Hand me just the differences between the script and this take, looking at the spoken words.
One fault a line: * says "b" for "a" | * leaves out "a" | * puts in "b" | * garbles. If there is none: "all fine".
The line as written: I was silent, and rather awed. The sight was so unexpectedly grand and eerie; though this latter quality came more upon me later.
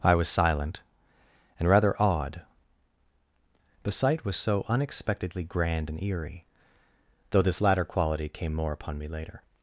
all fine